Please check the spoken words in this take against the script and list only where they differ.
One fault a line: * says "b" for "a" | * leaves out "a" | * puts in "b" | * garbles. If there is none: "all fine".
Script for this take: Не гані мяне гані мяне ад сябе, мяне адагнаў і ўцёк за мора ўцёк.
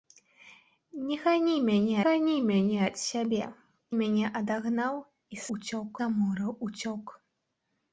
all fine